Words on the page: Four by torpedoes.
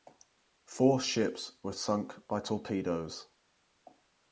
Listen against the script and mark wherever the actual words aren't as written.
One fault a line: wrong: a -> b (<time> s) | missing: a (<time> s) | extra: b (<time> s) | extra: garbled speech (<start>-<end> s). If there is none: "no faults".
extra: ships were sunk (1.0 s)